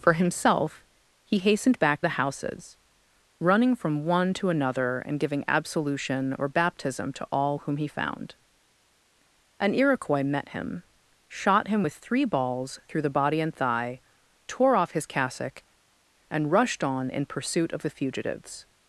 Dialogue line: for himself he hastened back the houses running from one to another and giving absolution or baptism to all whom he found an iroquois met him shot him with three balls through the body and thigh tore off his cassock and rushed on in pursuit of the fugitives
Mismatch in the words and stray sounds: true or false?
false